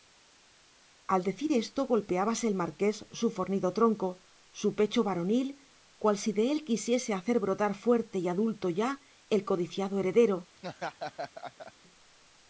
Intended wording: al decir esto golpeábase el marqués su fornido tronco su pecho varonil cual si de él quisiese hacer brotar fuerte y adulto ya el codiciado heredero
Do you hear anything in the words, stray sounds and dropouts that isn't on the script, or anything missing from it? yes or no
yes